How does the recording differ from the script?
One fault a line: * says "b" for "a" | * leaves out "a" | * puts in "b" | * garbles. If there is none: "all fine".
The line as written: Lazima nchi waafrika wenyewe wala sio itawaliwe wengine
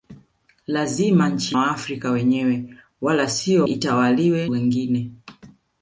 all fine